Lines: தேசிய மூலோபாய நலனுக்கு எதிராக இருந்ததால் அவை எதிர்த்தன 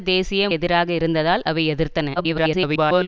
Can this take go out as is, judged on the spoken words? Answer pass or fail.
fail